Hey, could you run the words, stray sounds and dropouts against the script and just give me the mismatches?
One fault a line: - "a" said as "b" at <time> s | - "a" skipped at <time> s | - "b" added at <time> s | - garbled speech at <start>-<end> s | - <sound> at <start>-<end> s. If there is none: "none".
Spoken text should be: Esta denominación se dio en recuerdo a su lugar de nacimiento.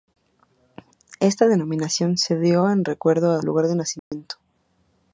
- "su" skipped at 3.4 s
- dropout at 4.0-4.1 s